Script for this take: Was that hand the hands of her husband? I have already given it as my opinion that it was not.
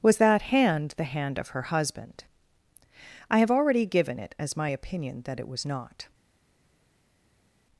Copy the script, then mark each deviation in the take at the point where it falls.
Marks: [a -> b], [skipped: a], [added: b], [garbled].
Was that hand the [hands -> hand] of her husband? I have already given it as my opinion that it was not.